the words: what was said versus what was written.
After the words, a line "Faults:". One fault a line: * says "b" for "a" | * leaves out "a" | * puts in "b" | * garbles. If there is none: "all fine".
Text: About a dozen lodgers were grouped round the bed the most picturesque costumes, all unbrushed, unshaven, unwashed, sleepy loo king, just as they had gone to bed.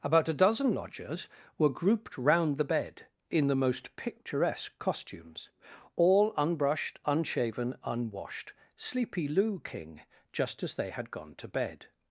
About a dozen lodgers were grouped round the bed in the most picturesque costumes, all unbrushed, unshaven, unwashed, sleepy loo king, just as they had gone to bed.
Faults:
* puts in "in"